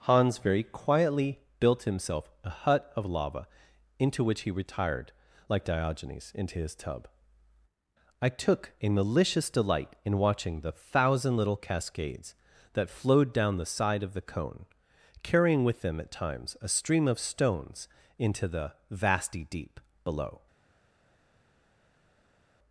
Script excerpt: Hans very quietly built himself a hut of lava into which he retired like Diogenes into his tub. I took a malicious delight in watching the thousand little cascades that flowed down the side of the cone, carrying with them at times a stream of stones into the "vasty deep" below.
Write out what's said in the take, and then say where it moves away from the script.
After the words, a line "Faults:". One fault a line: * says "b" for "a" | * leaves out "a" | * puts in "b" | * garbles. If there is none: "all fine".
Hans very quietly built himself a hut of lava into which he retired like Diogenes into his tub. I took a malicious delight in watching the thousand little cascades that flowed down the side of the cone, carrying with them at times a stream of stones into the "vasty deep" below.
Faults:
all fine